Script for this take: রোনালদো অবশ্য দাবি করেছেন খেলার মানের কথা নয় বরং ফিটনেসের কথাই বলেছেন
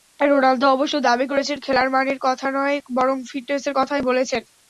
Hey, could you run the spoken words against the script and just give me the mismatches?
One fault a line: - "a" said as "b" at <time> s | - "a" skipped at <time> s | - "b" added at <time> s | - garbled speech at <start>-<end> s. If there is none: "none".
none